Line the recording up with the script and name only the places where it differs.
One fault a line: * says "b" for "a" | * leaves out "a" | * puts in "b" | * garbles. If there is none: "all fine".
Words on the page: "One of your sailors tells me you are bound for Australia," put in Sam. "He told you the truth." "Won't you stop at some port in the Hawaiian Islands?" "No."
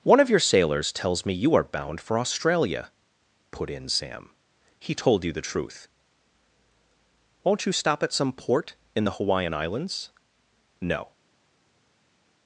all fine